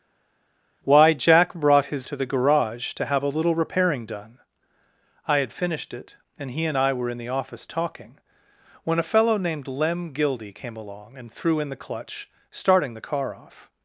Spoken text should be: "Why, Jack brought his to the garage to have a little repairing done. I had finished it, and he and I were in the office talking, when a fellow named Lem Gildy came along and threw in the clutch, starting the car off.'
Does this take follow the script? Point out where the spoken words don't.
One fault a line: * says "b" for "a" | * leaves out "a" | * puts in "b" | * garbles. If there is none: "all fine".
all fine